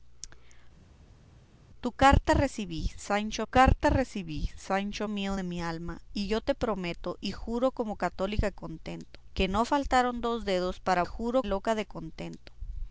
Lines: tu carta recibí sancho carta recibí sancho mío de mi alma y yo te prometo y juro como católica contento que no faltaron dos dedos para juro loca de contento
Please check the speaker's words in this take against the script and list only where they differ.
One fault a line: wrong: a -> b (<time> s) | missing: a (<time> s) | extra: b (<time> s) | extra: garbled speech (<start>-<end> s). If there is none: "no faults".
no faults